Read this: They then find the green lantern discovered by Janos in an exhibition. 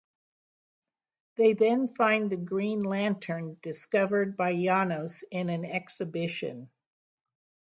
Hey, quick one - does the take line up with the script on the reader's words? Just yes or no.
yes